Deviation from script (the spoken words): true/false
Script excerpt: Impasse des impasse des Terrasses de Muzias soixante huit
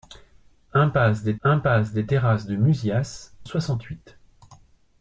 false